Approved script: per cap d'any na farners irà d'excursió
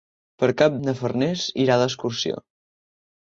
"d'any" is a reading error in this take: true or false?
true